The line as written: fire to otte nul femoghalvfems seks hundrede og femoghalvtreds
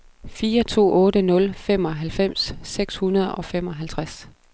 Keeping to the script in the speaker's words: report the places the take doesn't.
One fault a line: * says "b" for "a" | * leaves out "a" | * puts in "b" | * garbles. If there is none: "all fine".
all fine